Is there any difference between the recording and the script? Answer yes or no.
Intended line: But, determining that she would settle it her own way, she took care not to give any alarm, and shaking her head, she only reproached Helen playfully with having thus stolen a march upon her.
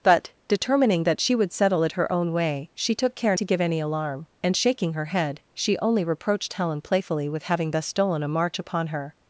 yes